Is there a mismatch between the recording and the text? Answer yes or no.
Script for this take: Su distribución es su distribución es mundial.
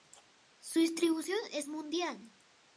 yes